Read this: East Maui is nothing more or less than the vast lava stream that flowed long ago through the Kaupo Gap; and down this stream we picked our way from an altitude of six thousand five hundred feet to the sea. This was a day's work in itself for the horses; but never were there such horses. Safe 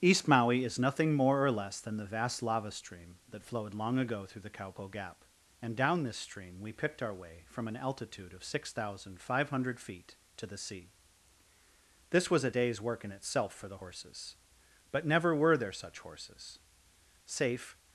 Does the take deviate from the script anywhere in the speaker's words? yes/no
no